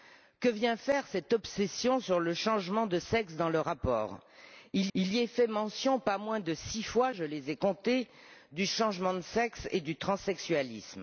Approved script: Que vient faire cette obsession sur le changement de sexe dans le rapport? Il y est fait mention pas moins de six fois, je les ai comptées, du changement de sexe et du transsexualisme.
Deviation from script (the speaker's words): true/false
true